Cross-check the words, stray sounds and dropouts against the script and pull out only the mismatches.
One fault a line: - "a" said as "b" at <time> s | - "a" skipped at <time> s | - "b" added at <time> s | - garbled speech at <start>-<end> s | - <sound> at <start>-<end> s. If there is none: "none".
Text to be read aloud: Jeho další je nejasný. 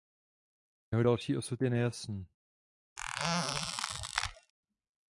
- "osud" added at 1.4 s
- squeak at 3.0-4.5 s